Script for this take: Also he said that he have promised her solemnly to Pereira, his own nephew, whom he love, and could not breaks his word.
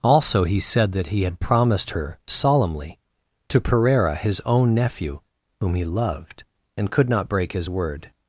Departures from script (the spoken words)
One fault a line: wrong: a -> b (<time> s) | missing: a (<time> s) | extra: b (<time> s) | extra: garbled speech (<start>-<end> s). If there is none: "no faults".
wrong: have -> had (1.2 s)
wrong: love -> loved (5.8 s)
wrong: breaks -> break (7.3 s)